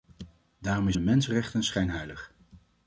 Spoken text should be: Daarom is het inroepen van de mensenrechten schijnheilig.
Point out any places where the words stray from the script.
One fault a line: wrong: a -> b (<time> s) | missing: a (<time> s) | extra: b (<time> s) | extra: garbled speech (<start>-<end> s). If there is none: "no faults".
missing: het inroepen van (0.9 s)